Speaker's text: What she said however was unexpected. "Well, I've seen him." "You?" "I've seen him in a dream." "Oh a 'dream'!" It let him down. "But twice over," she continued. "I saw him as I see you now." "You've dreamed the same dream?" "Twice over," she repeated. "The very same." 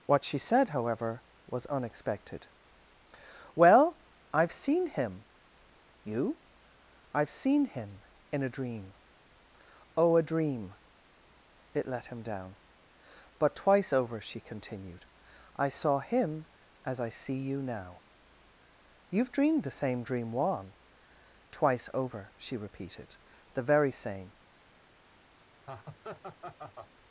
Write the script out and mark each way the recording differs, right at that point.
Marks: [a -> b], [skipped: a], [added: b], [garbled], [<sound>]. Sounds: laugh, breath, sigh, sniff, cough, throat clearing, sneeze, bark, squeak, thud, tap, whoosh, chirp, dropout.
What she said however was unexpected. "Well, I've seen him." "You?" "I've seen him in a dream." "Oh a 'dream'!" It let him down. "But twice over," she continued. "I saw him as I see you now." "You've dreamed the same dream?" [added: juan] "Twice over," she repeated. "The very same." [laugh]